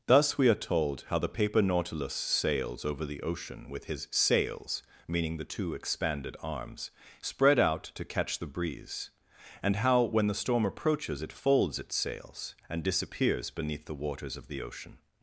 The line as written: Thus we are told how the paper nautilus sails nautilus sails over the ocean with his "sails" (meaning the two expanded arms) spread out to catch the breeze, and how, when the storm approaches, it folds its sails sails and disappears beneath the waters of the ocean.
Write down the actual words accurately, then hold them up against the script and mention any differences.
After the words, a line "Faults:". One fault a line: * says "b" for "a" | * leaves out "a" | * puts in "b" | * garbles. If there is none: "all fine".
Thus we are told how the paper nautilus sails over the ocean with his "sails" (meaning the two expanded arms) spread out to catch the breeze, and how, when the storm approaches, it folds its sails and disappears beneath the waters of the ocean.
Faults:
* leaves out "nautilus sails"
* leaves out "sails"